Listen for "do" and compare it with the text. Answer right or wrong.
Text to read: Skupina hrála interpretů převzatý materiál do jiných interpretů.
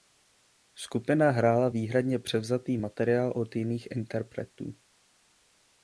wrong